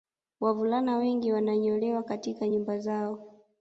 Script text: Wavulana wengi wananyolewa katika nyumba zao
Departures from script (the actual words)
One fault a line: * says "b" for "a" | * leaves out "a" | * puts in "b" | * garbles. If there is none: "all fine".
all fine